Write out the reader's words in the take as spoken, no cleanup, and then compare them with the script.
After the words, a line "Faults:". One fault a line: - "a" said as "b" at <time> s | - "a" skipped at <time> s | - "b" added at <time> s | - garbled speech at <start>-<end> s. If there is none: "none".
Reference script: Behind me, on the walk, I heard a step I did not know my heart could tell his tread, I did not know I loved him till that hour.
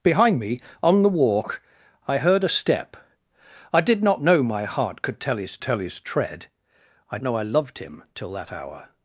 Behind me, on the walk, I heard a step I did not know my heart could tell his tell his tread, I know I loved him till that hour.
Faults:
- "tell his" added at 5.6 s
- "did not" skipped at 7.2 s